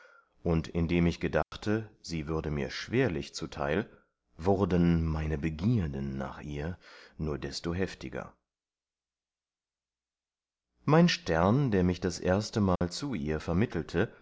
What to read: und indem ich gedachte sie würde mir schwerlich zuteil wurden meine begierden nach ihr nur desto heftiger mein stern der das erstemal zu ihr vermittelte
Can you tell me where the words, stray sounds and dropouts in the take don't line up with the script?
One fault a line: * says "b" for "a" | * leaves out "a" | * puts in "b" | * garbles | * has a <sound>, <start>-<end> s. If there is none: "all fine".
* has a dropout, 1.4-1.5 s
* puts in "mich"
* has a dropout, 12.8-12.8 s